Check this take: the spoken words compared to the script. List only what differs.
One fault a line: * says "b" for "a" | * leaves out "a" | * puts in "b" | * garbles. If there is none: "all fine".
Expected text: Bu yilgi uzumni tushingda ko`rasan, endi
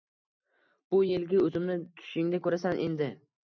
all fine